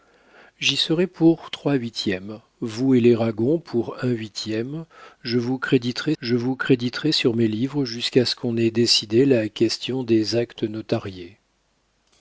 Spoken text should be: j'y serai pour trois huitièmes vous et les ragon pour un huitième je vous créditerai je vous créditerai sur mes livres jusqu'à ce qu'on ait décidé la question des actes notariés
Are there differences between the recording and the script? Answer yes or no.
no